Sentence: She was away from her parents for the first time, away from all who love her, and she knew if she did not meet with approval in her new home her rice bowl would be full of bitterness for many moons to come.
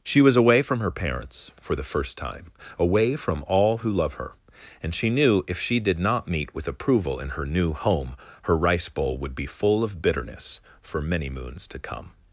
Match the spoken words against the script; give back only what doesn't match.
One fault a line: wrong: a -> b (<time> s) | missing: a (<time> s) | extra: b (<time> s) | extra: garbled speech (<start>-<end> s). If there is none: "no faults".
no faults